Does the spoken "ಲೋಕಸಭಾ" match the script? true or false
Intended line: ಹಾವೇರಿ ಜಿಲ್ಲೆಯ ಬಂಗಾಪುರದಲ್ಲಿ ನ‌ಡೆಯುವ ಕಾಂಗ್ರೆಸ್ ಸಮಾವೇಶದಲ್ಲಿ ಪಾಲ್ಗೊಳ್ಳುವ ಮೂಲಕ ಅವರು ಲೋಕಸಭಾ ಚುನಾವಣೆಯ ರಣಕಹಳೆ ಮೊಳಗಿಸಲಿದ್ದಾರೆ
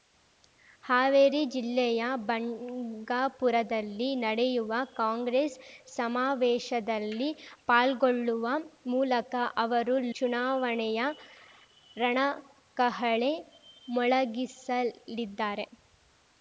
false